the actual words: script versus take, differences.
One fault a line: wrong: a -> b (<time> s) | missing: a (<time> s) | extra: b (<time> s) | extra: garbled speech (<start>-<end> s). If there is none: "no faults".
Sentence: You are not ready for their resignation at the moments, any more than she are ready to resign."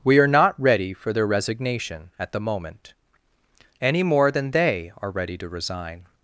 wrong: You -> We (0.0 s)
wrong: moments -> moment (2.4 s)
wrong: she -> they (4.5 s)